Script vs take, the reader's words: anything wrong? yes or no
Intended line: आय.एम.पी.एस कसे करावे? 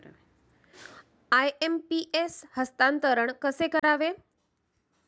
yes